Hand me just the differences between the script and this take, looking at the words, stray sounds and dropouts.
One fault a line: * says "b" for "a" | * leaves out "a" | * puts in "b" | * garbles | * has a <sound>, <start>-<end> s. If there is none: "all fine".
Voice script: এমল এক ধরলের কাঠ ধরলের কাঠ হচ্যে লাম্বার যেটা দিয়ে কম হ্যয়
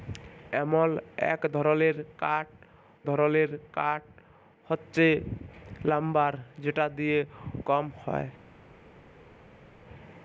all fine